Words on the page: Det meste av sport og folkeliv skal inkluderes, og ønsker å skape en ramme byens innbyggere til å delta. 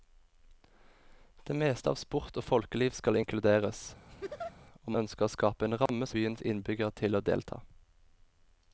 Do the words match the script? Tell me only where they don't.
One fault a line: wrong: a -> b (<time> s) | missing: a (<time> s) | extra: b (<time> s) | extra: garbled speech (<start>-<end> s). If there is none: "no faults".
no faults